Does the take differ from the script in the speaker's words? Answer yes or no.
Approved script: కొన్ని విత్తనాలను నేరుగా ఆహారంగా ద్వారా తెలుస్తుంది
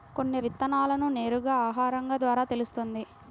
no